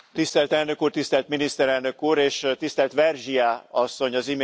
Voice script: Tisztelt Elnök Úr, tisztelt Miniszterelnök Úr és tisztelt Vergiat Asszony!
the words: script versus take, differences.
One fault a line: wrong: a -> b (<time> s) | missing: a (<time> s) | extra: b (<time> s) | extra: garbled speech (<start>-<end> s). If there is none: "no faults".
no faults